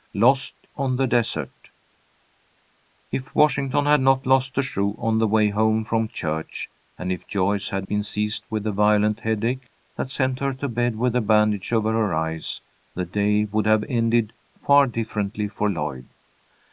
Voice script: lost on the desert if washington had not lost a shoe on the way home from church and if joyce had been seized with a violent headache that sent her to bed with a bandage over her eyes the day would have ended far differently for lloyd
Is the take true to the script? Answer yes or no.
yes